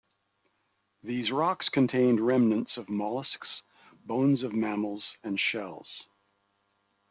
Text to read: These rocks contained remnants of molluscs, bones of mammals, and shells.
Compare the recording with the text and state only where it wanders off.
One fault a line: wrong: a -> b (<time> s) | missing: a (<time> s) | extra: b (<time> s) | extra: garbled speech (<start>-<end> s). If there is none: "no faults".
no faults